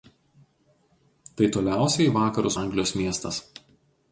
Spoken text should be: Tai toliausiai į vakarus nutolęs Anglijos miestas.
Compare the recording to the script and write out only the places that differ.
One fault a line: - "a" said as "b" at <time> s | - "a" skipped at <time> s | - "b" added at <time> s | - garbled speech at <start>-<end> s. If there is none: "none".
- "nutolęs" skipped at 2.6 s